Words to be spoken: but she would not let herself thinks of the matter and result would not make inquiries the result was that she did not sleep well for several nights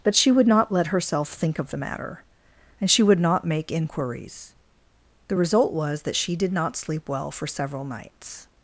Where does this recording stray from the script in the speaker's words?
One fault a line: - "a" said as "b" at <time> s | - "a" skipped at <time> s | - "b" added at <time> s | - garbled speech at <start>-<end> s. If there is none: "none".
- "thinks" said as "think" at 1.3 s
- "result" said as "she" at 2.9 s